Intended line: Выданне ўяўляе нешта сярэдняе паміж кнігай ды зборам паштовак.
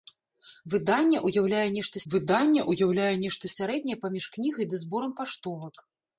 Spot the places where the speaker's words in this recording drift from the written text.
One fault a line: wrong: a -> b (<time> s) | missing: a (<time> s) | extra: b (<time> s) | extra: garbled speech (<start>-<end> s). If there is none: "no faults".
extra: выданне ўяўляе нешта (2.1 s)